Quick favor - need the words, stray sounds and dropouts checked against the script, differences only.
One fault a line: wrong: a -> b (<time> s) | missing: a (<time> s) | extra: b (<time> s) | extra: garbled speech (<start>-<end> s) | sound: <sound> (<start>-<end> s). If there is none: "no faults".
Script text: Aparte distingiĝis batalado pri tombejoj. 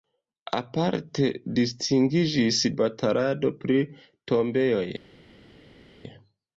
no faults